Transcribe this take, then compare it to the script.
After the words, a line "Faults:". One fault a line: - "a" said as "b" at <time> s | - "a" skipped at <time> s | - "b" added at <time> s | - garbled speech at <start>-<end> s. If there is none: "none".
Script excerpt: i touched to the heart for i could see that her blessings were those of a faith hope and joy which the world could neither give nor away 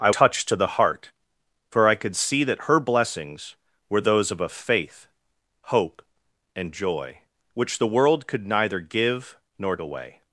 i touched to the heart for i could see that her blessings were those of a faith hope and joy which the world could neither give nor away
Faults:
none